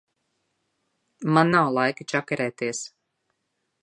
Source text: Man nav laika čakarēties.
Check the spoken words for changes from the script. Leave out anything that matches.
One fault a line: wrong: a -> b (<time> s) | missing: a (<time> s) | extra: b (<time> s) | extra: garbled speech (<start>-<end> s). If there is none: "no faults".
no faults